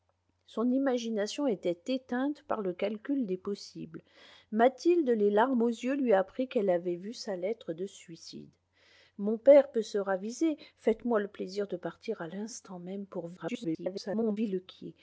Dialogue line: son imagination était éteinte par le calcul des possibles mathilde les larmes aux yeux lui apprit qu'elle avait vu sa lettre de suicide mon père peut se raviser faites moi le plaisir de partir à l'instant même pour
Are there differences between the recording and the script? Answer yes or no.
yes